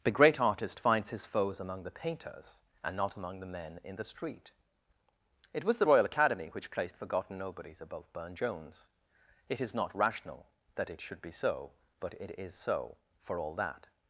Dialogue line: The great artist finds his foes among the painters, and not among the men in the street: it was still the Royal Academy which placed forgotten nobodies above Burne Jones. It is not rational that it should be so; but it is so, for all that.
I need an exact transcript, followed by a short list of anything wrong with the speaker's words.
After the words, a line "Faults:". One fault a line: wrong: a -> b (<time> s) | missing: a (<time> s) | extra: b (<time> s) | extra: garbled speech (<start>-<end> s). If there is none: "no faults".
The great artist finds his foes among the painters, and not among the men in the street: it was the Royal Academy which placed forgotten nobodies above Burne Jones. It is not rational that it should be so; but it is so, for all that.
Faults:
missing: still (5.8 s)